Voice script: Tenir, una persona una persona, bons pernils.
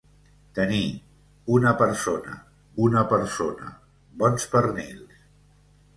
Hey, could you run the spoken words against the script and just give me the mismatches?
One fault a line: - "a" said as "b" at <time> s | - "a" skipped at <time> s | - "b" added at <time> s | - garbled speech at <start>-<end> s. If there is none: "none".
none